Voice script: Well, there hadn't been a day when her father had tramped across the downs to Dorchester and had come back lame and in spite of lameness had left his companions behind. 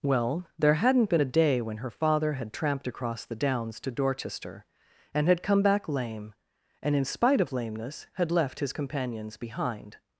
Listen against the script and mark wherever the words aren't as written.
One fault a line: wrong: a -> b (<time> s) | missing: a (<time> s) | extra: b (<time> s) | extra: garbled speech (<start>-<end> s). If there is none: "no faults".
no faults